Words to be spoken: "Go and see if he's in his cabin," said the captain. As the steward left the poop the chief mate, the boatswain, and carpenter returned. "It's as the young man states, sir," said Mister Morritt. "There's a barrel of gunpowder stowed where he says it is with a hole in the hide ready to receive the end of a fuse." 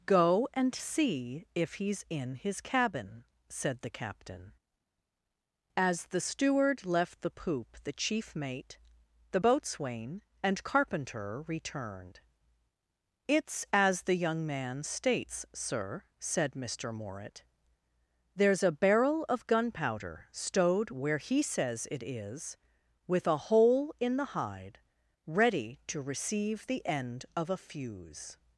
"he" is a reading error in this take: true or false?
false